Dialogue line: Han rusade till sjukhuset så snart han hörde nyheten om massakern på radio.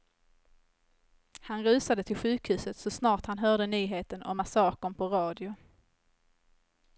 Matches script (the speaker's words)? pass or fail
pass